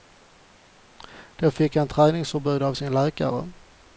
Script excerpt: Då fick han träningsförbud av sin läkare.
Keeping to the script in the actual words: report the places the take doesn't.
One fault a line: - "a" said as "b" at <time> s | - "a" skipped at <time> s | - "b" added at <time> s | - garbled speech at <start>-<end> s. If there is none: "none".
none